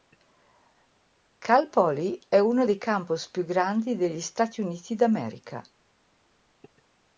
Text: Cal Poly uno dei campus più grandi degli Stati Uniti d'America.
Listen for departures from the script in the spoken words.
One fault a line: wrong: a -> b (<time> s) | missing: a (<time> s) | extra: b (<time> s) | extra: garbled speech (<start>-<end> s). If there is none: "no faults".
extra: è (2.3 s)